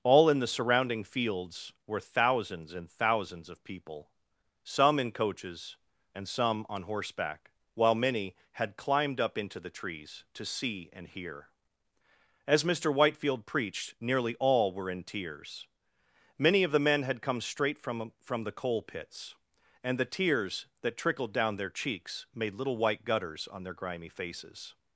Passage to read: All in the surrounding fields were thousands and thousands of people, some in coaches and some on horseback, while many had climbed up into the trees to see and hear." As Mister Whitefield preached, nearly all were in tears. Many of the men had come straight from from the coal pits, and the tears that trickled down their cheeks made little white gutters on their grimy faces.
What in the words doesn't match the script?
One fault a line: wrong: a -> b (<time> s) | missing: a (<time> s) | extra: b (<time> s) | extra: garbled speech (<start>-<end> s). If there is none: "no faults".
no faults